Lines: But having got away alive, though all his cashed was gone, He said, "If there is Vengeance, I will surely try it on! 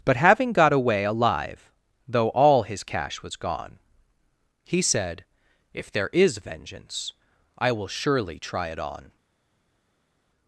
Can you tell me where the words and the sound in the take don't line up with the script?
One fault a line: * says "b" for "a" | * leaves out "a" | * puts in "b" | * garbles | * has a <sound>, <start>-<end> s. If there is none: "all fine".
* says "cash" for "cashed"